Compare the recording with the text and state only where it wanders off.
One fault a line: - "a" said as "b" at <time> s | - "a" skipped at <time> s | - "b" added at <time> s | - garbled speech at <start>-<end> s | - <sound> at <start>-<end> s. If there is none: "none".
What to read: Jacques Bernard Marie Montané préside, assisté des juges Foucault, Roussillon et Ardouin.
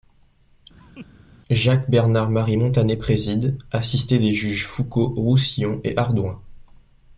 - laugh at 0.8-1.1 s